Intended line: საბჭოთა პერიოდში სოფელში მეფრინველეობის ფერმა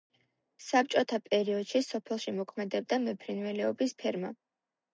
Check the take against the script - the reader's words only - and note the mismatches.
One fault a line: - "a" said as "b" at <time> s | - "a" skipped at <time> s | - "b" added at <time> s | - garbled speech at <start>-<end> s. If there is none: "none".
- "მოქმედებდა" added at 2.4 s